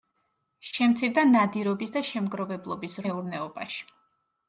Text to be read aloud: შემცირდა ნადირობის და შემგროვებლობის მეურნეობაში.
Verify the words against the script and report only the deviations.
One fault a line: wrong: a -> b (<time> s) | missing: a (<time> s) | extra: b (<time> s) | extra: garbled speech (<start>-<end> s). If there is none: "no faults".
no faults